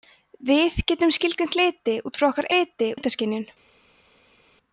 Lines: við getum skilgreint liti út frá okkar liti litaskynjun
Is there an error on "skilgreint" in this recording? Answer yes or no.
no